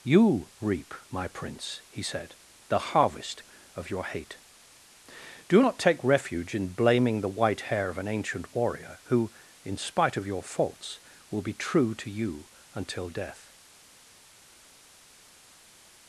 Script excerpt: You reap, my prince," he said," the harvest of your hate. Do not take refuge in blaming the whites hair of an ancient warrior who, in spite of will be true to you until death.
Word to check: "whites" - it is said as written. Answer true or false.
false